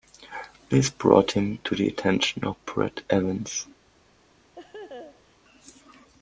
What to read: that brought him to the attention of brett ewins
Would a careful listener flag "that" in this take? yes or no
yes